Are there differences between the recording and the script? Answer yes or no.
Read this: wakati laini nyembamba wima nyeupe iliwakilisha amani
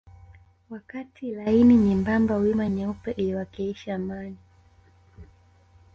no